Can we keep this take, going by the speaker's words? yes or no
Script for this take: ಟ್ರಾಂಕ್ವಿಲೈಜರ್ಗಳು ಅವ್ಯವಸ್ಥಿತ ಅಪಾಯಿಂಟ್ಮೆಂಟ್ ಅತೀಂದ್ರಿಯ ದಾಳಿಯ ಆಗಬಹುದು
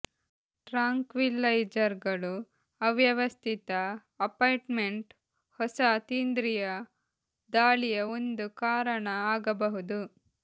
no